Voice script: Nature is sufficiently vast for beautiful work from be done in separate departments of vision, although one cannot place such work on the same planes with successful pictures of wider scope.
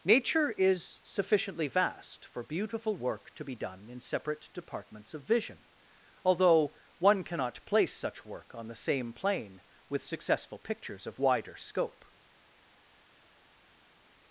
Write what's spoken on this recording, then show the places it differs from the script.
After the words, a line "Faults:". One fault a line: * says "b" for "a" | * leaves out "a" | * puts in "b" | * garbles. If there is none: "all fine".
Nature is sufficiently vast for beautiful work to be done in separate departments of vision, although one cannot place such work on the same plane with successful pictures of wider scope.
Faults:
* says "to" for "from"
* says "plane" for "planes"